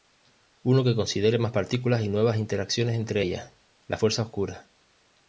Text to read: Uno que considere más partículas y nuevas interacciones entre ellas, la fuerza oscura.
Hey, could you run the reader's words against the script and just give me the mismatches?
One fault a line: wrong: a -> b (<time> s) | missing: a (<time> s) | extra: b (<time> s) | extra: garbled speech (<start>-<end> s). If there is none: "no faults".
no faults